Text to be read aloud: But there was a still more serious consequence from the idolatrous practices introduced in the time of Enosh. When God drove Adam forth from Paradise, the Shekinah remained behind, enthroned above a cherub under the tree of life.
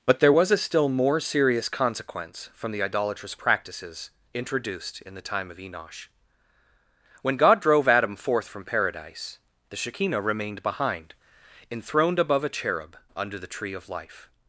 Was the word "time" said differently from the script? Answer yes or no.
no